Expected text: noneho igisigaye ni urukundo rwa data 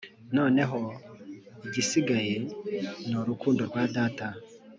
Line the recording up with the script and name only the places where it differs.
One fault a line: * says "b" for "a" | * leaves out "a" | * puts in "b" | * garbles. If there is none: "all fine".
all fine